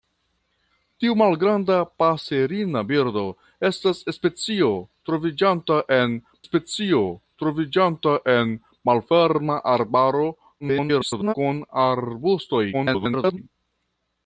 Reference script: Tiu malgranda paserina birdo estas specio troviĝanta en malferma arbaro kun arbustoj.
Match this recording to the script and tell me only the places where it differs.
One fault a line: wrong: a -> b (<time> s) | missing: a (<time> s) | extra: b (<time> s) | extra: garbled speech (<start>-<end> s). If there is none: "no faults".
extra: specio troviĝanta en (6.5 s)
extra: garbled speech (10.6-11.3 s)
extra: garbled speech (12.7-13.4 s)